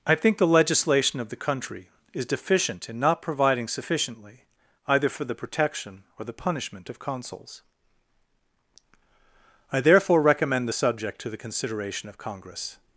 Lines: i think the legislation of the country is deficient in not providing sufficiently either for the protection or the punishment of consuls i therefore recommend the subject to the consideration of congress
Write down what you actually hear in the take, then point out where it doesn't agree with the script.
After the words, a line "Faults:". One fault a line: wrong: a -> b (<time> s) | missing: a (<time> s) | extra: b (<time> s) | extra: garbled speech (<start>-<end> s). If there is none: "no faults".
i think the legislation of the country is deficient in not providing sufficiently either for the protection or the punishment of consuls i therefore recommend the subject to the consideration of congress
Faults:
no faults